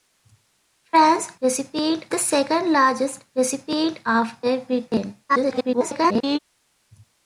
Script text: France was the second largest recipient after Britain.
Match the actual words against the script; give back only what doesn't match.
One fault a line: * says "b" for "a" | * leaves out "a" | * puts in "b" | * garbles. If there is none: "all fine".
* says "recipient" for "was"
* garbles